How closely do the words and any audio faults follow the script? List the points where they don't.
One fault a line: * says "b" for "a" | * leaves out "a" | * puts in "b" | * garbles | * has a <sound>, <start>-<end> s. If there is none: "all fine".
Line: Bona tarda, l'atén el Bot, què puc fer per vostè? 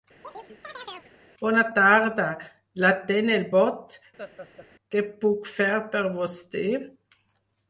* has a chirp, 0.2-1.1 s
* has a laugh, 4.2-4.7 s